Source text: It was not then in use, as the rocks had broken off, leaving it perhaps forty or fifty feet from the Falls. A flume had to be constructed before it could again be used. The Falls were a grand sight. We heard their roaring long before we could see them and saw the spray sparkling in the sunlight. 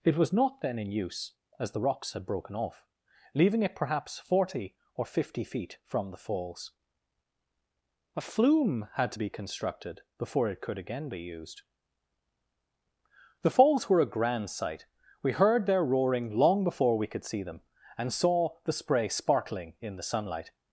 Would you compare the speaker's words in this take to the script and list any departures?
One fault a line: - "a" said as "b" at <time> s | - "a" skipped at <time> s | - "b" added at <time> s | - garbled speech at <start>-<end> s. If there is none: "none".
none